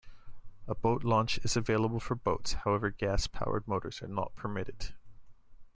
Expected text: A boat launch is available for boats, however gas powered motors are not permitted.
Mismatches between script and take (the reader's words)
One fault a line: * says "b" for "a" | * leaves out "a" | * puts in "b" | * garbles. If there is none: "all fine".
all fine